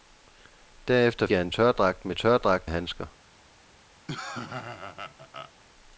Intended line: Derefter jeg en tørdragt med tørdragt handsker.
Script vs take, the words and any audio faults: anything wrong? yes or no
yes